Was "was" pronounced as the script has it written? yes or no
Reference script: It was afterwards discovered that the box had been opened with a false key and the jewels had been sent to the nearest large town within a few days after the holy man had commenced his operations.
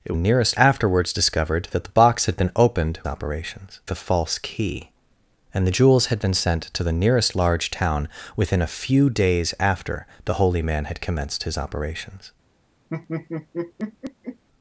no